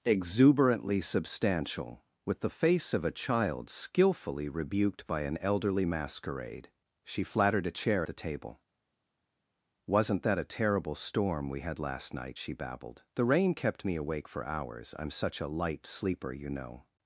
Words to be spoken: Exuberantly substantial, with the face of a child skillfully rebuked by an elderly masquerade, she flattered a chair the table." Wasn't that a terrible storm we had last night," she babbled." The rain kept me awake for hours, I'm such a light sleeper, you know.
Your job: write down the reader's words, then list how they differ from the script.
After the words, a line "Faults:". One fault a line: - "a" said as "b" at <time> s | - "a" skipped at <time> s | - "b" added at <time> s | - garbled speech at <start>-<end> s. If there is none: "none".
Exuberantly substantial, with the face of a child skillfully rebuked by an elderly masquerade, she flattered a chair the table." Wasn't that a terrible storm we had last night," she babbled." The rain kept me awake for hours, I'm such a light sleeper, you know.
Faults:
none